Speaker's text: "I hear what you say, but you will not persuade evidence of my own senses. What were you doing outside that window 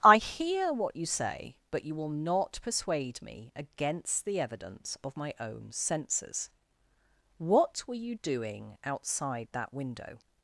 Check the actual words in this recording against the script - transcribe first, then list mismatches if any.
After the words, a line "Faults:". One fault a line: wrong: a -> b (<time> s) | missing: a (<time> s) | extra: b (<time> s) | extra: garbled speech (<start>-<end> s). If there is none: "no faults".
"I hear what you say, but you will not persuade me against the evidence of my own senses. What were you doing outside that window
Faults:
extra: me against the (3.2 s)